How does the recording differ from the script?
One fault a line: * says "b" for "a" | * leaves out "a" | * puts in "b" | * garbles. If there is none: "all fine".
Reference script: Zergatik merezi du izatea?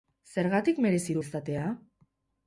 all fine